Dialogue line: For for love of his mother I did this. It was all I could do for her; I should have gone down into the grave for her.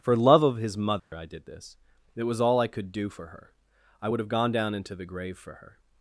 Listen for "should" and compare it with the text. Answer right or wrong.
wrong